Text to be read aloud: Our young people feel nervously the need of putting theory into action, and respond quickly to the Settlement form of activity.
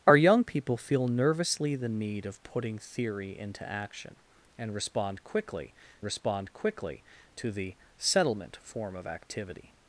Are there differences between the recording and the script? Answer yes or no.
yes